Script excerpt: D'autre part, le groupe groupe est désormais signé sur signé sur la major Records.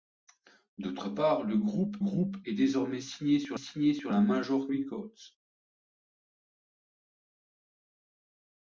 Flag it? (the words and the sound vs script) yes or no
no